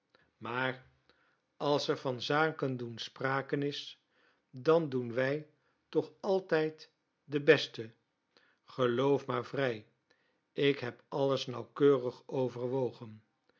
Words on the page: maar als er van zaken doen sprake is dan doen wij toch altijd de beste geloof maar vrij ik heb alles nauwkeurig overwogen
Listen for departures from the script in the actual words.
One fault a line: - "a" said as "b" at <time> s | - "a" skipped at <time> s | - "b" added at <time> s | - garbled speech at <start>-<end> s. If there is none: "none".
none